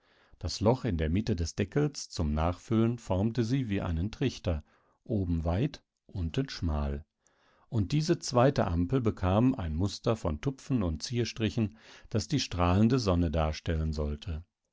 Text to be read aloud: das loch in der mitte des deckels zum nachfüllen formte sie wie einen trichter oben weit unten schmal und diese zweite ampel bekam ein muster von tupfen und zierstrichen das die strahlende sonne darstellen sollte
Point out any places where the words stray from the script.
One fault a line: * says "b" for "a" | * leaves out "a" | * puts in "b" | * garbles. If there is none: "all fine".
all fine